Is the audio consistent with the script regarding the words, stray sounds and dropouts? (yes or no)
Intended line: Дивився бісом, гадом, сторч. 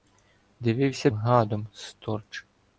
no